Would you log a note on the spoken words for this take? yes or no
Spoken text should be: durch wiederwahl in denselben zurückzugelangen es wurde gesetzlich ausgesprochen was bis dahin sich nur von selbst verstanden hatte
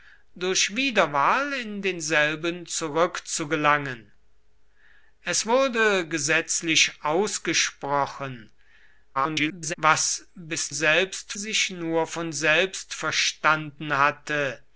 yes